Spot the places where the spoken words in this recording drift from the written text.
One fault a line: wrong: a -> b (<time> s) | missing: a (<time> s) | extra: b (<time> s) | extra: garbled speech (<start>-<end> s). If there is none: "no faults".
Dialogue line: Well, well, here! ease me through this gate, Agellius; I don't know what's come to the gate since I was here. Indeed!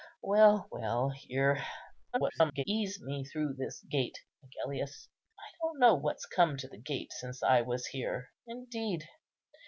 extra: garbled speech (2.1-2.6 s)